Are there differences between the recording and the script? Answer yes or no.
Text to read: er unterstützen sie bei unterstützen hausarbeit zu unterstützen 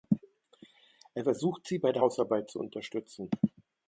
yes